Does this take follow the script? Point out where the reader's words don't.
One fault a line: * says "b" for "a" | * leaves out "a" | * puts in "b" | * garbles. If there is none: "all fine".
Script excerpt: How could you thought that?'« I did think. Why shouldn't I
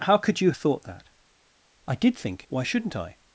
all fine